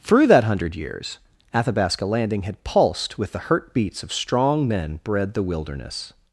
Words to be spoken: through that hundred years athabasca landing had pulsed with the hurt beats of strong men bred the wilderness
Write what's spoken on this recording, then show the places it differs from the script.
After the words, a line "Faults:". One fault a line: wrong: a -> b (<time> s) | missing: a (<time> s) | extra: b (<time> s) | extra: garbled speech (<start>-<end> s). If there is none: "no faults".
through that hundred years athabasca landing had pulsed with the hurt beats of strong men bred the wilderness
Faults:
no faults